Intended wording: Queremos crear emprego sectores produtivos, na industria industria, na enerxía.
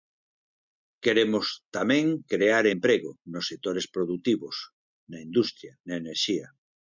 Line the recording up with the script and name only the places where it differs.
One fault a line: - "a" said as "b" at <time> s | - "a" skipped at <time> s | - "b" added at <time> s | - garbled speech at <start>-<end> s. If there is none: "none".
- "tamén" added at 1.8 s
- "nos" added at 3.3 s
- "industria" skipped at 5.7 s